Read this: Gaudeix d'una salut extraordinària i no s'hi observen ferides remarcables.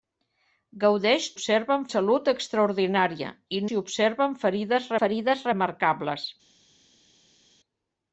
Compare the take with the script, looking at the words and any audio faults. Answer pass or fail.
fail